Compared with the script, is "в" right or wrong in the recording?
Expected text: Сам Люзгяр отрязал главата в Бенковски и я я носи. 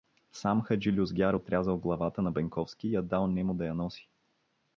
wrong